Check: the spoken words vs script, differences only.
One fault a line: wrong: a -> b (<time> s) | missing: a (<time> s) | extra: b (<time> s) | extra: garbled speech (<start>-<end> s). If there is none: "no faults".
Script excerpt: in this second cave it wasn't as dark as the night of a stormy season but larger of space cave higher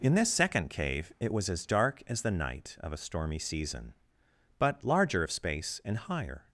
wrong: wasn't -> was (1.3 s)
wrong: cave -> and (5.8 s)